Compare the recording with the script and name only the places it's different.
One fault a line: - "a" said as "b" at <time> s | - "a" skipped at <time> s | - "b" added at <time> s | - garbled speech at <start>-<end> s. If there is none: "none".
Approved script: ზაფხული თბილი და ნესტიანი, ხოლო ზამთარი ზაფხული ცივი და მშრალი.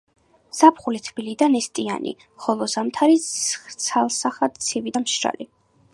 - "ზაფხული" said as "ცალსახად" at 3.9 s